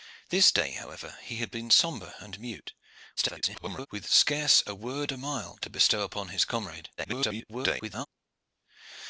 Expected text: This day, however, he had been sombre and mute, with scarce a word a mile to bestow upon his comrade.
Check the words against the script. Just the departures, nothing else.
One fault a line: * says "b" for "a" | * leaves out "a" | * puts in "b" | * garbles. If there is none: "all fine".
* garbles
* garbles